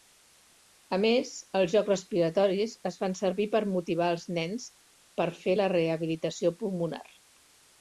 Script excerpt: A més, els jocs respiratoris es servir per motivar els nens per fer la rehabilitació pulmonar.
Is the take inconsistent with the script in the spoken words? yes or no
yes